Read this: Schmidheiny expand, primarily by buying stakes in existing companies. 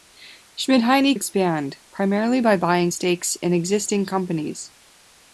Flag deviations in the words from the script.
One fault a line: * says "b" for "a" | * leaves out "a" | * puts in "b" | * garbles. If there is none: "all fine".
all fine